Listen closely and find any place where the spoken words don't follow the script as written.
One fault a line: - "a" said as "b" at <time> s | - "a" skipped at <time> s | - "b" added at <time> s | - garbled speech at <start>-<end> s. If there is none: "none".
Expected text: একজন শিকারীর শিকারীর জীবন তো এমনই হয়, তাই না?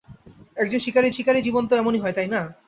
none